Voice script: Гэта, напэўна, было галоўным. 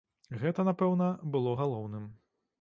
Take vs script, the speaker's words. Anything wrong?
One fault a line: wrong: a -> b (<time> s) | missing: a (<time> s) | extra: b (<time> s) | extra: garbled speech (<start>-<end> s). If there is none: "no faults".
no faults